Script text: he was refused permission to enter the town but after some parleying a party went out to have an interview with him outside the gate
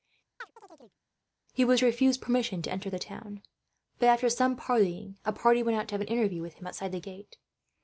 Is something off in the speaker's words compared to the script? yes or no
no